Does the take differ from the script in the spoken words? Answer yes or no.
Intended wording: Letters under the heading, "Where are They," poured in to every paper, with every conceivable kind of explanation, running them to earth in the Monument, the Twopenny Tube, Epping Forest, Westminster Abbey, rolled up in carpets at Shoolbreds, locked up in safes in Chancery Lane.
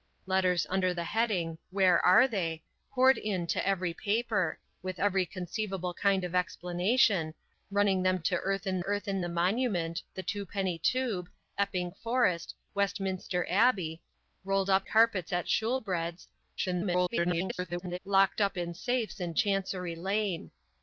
yes